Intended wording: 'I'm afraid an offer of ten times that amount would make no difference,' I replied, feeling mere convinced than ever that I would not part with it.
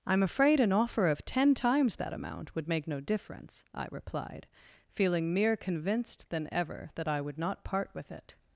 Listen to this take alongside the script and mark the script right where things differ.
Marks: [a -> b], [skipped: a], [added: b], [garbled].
'I'm afraid an offer of ten times that amount would make no difference,' I replied, feeling mere convinced than ever that I would not part with it.